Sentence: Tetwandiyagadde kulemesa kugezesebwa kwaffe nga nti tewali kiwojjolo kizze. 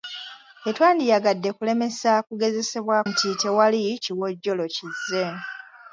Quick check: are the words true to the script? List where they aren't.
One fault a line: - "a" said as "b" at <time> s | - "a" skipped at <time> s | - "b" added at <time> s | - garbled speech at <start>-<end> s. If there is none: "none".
- "kwaffe nga" skipped at 3.0 s